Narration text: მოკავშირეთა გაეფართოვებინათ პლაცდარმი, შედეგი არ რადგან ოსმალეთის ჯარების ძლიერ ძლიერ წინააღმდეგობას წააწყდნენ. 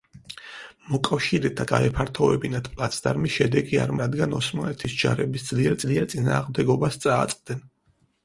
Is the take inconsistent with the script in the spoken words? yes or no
no